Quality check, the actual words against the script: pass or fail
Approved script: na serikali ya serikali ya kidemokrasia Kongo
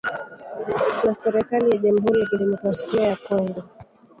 fail